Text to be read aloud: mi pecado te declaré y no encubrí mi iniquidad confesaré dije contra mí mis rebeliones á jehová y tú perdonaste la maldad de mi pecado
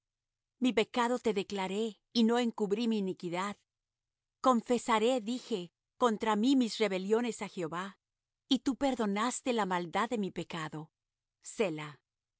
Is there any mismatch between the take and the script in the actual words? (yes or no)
no